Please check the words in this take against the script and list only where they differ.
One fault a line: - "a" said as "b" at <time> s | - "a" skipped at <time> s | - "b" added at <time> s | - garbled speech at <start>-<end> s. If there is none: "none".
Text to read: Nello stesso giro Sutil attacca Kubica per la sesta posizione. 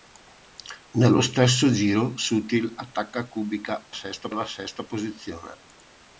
- "per" said as "sesta" at 3.9 s